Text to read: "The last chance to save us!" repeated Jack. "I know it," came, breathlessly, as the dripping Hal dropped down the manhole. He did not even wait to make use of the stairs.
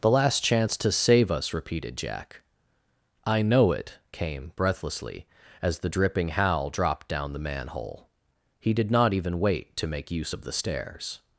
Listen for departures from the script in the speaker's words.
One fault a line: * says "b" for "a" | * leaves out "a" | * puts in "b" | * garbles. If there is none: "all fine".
all fine